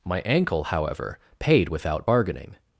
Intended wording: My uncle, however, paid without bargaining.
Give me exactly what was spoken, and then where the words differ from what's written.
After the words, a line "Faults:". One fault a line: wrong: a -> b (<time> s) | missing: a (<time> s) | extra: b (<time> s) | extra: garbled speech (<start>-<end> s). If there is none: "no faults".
My ankle, however, paid without bargaining.
Faults:
wrong: uncle -> ankle (0.2 s)